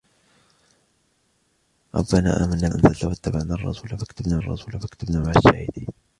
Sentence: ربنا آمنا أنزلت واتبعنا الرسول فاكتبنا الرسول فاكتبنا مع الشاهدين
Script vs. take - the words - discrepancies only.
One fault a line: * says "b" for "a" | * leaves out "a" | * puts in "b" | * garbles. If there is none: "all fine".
all fine